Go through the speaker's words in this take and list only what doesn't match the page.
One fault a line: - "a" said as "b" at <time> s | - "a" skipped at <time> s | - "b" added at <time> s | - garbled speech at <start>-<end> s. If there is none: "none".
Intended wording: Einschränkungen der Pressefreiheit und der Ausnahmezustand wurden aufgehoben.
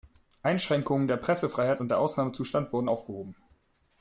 none